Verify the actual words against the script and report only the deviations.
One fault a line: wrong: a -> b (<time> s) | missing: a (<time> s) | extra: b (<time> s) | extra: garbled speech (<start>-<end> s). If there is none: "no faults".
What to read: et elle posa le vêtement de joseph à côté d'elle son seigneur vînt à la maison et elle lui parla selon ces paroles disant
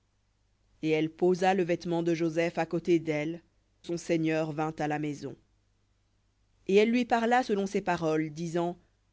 no faults